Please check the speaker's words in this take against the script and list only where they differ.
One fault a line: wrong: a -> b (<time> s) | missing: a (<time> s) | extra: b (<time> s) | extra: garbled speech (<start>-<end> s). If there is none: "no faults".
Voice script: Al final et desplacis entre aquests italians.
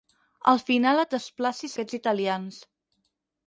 missing: entre (1.8 s)